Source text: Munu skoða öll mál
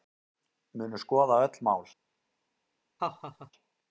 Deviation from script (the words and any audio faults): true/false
true